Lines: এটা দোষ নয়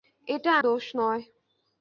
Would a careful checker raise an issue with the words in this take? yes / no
no